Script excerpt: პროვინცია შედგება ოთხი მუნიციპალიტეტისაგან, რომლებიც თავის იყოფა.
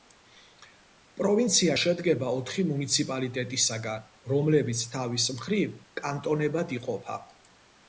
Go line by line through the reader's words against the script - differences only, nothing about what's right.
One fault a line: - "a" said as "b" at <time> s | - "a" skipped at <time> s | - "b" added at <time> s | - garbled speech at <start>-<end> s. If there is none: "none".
- "მხრივ კანტონებად" added at 5.4 s